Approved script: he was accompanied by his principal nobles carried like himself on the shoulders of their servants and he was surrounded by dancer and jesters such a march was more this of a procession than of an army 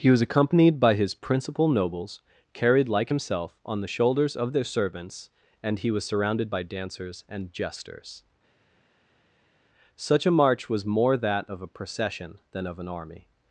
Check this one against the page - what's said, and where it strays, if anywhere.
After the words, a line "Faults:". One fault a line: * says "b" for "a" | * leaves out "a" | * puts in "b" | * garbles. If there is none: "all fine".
he was accompanied by his principal nobles carried like himself on the shoulders of their servants and he was surrounded by dancers and jesters such a march was more that of a procession than of an army
Faults:
* says "dancers" for "dancer"
* says "that" for "this"